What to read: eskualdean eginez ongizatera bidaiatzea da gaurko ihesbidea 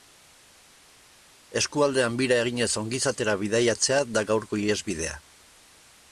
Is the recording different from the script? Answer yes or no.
yes